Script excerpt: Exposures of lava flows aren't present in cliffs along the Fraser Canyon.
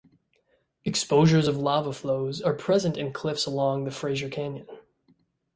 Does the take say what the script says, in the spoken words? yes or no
no